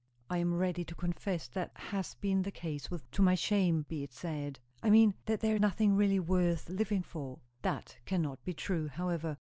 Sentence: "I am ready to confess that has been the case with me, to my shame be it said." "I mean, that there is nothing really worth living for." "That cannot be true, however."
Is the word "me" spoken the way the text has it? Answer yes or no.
no